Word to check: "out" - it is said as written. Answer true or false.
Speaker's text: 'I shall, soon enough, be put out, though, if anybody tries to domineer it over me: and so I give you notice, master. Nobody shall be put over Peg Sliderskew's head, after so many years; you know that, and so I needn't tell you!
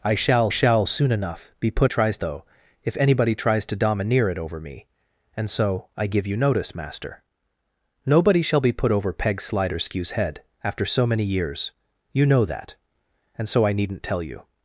false